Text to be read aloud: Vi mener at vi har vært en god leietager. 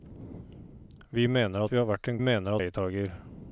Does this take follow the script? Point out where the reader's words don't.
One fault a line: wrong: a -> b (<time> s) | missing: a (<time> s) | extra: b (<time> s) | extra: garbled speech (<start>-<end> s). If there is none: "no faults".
missing: at (1.6 s)
wrong: god -> mener (2.2 s)